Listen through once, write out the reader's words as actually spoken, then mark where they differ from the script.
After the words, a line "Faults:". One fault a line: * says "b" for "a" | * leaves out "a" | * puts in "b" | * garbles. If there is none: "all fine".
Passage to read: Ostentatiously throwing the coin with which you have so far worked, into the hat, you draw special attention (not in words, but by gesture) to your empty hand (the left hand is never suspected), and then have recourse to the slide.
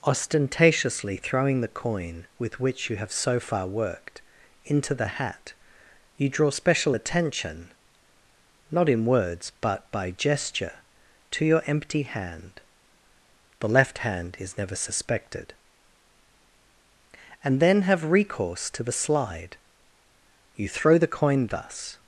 Ostentatiously throwing the coin with which you have so far worked, into the hat, you draw special attention (not in words, but by gesture) to your empty hand (the left hand is never suspected), and then have recourse to the slide. You throw the coin thus
Faults:
* puts in "You throw the coin thus"